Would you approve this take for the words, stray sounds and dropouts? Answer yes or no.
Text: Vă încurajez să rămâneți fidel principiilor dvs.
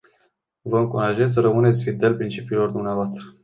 yes